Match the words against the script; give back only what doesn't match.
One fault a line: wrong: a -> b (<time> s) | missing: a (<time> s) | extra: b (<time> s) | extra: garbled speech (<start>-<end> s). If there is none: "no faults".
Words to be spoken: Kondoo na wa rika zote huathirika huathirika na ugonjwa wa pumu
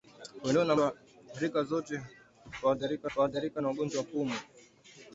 no faults